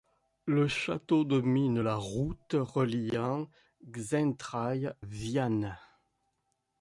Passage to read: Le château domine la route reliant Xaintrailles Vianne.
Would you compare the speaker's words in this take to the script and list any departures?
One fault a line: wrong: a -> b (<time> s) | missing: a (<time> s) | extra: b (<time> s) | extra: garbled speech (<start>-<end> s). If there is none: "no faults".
no faults